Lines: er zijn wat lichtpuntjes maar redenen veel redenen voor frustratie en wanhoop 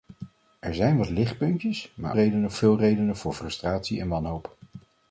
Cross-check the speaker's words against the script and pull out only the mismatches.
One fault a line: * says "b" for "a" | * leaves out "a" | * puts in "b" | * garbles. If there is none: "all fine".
all fine